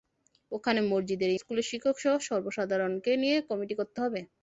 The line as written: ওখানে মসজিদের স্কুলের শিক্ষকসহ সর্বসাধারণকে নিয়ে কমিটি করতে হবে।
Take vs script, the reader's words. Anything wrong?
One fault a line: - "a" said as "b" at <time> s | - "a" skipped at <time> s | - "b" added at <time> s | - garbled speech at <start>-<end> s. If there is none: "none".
none